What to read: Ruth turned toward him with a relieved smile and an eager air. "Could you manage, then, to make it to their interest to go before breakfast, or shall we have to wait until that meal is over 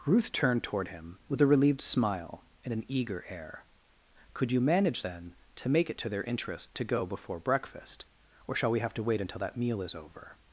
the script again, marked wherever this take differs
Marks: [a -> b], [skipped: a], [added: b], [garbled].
Ruth turned toward him with a relieved smile and an eager air. "Could you manage, then, to make it to their interest to go before breakfast, or shall we have to wait until that meal is over